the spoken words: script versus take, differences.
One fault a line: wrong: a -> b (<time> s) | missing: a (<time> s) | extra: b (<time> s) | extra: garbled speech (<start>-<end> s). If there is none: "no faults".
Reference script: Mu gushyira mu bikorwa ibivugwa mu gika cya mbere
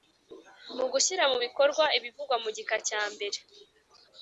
no faults